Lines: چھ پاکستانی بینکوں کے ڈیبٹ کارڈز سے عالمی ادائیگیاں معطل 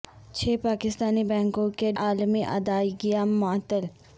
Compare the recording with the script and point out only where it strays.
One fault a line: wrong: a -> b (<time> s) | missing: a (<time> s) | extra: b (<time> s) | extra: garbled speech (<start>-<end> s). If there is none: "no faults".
missing: ڈیبٹ کارڈز سے (1.9 s)